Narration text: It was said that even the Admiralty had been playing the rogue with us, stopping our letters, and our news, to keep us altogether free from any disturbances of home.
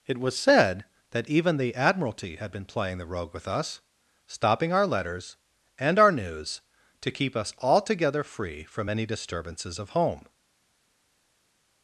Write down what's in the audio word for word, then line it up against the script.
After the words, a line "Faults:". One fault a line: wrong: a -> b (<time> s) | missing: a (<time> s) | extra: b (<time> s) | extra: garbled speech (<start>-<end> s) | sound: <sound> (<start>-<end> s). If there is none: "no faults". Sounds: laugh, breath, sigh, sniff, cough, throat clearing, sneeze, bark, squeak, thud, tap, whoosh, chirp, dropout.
It was said that even the Admiralty had been playing the rogue with us, stopping our letters, and our news, to keep us altogether free from any disturbances of home.
Faults:
no faults